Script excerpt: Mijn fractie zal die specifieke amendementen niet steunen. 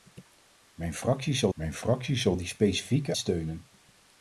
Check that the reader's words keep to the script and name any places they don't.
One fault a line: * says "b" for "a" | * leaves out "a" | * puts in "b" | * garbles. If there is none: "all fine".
* puts in "mijn fractie zal"
* leaves out "amendementen niet"